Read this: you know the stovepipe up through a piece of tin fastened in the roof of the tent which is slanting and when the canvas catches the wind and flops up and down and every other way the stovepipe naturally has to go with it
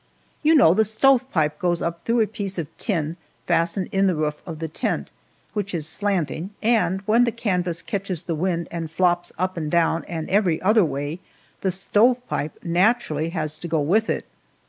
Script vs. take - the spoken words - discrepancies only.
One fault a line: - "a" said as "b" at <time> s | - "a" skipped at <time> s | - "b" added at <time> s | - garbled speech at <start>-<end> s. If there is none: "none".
- "goes" added at 1.6 s